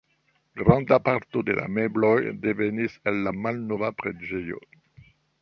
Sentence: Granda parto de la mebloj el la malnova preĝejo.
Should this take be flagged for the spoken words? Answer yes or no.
yes